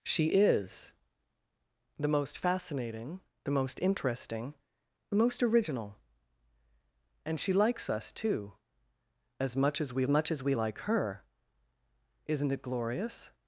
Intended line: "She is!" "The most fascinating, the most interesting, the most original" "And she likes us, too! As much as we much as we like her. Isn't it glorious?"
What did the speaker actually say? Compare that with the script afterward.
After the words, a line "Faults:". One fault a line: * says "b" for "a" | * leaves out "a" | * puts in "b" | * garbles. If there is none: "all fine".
"She is!" "The most fascinating, the most interesting, the most original" "And she likes us, too! As much as we much as we like her. Isn't it glorious?"
Faults:
all fine